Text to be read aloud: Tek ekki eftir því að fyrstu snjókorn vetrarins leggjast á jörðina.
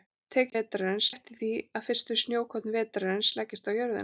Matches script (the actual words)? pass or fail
fail